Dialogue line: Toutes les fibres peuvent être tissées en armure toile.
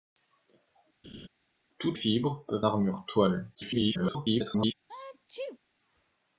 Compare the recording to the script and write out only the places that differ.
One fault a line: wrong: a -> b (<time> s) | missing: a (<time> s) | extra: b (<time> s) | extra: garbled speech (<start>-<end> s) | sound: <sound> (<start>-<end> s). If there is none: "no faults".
sound: laugh (1.0-1.3 s)
missing: les (2.0 s)
missing: être tissées en (2.7 s)
extra: garbled speech (3.5-4.7 s)
sound: sneeze (4.9-5.6 s)